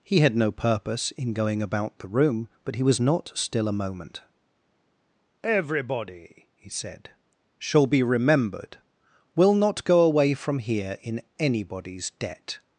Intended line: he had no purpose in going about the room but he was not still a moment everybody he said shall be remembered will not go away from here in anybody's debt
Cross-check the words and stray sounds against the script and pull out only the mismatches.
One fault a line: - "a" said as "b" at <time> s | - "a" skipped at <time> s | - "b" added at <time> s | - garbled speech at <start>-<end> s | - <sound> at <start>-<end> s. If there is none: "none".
none